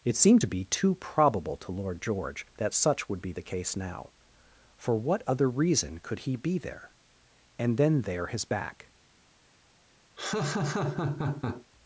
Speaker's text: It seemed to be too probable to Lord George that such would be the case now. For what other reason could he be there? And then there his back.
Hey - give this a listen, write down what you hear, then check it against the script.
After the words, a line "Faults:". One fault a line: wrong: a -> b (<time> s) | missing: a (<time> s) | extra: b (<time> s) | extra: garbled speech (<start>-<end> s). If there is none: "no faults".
It seemed to be too probable to Lord George that such would be the case now. For what other reason could he be there? And then there his back.
Faults:
no faults